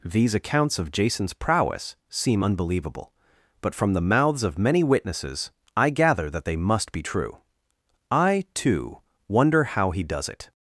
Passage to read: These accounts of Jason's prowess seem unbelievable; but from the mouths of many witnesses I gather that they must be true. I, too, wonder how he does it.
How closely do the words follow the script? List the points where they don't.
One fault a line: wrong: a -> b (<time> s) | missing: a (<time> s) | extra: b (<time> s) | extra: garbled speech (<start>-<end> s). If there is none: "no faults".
no faults